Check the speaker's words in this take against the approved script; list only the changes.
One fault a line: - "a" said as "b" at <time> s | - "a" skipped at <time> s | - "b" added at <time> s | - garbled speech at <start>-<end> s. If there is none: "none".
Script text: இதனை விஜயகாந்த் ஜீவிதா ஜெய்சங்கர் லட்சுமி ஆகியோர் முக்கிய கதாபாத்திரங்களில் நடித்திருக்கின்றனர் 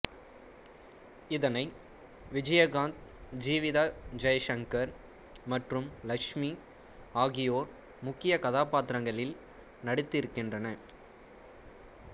- "மற்றும்" added at 5.5 s